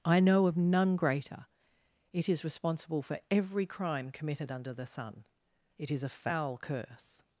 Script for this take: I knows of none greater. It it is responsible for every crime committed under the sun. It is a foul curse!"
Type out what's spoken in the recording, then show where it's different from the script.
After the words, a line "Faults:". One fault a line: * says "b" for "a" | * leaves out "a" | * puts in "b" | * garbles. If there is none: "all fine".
I know of none greater. It is responsible for every crime committed under the sun. It is a foul curse!"
Faults:
* says "know" for "knows"
* leaves out "it"